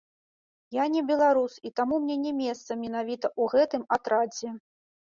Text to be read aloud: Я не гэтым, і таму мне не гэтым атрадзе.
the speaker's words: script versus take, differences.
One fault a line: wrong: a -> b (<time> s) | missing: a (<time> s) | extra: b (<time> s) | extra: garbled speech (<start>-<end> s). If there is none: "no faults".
wrong: гэтым -> беларус (1.1 s)
extra: месца менавіта ў (2.4 s)